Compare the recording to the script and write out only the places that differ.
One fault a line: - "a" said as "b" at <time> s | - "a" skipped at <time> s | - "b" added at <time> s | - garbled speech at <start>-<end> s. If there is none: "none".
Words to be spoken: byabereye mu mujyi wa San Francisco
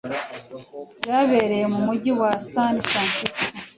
none